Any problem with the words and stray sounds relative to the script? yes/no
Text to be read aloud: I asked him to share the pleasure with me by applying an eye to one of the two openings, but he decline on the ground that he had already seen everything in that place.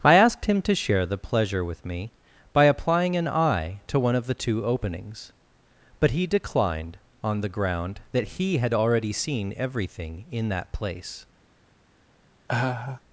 yes